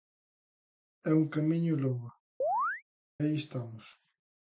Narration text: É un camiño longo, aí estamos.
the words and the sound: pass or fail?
fail